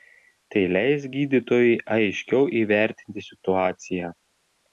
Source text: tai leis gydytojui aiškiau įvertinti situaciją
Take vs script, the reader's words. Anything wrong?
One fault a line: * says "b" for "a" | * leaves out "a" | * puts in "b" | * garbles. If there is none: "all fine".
all fine